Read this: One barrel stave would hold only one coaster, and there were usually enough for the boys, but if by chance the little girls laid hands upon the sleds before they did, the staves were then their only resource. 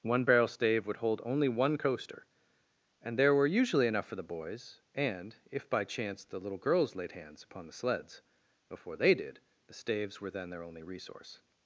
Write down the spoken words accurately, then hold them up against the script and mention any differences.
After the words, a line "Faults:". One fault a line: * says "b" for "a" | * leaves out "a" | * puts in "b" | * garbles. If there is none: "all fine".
One barrel stave would hold only one coaster, and there were usually enough for the boys, and if by chance the little girls laid hands upon the sleds before they did, the staves were then their only resource.
Faults:
* says "and" for "but"